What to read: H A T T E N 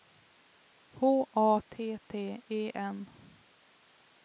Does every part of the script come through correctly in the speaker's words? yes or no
yes